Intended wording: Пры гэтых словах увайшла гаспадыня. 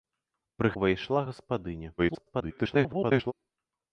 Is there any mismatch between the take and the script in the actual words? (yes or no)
yes